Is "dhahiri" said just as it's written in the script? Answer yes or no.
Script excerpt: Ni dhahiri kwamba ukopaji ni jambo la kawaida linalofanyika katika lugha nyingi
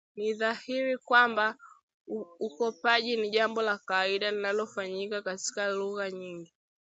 yes